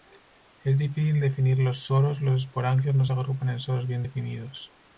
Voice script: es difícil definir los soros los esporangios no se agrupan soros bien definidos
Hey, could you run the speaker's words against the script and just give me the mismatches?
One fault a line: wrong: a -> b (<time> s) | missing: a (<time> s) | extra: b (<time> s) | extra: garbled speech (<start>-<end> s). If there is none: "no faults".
extra: en (3.5 s)